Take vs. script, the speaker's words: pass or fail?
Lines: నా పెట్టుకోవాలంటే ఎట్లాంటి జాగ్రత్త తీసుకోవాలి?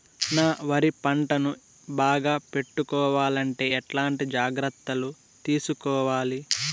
fail